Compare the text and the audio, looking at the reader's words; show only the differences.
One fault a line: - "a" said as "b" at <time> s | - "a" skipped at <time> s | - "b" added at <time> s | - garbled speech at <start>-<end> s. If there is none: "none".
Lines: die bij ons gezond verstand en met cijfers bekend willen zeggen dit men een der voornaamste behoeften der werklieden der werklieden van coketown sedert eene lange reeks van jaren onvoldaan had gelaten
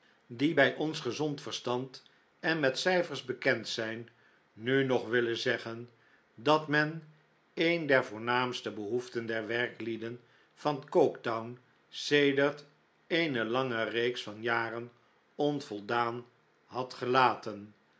- "zijn nu nog" added at 3.7 s
- "dit" said as "dat" at 6.3 s
- "der werklieden" skipped at 10.2 s